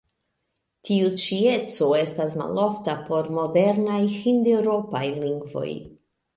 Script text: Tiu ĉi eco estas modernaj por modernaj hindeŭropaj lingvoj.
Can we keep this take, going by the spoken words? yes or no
no